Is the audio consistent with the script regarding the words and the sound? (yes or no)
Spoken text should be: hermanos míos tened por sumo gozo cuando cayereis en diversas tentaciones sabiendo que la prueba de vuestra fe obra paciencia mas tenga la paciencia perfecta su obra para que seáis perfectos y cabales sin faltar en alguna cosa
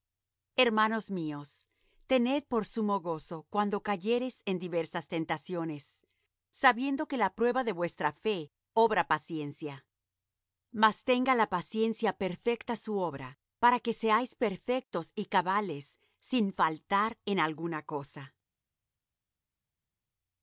yes